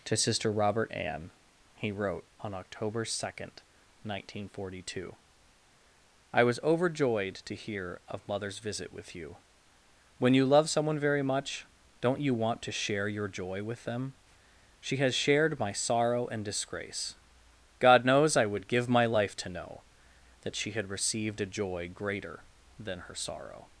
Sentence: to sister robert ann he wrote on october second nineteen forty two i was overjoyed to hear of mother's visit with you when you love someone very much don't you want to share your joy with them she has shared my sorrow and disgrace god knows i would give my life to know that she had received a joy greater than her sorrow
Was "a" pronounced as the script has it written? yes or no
yes